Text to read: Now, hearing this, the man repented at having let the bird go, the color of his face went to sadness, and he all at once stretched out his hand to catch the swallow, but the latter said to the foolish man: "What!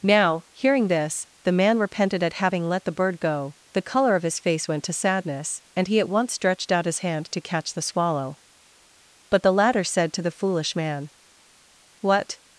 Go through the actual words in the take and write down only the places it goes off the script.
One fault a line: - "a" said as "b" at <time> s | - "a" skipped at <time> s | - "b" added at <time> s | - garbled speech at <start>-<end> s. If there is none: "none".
- "all" skipped at 6.0 s